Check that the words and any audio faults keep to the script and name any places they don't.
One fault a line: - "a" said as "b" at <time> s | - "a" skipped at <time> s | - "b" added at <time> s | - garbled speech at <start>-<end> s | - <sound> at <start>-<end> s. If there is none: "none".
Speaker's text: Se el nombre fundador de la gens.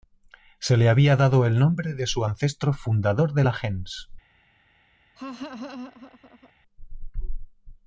- "le había dado" added at 0.8 s
- "de su ancestro" added at 1.9 s
- laugh at 5.2-6.5 s